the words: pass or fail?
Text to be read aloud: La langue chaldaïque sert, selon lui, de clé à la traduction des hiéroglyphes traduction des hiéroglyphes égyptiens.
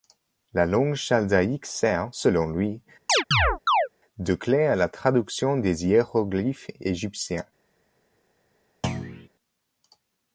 fail